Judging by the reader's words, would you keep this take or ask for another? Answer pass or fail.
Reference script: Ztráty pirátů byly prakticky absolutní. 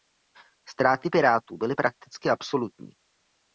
pass